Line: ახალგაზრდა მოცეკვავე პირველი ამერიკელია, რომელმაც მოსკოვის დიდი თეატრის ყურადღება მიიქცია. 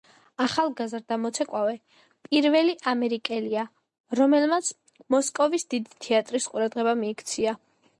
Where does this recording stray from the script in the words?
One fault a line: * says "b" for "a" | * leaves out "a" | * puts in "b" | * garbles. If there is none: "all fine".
all fine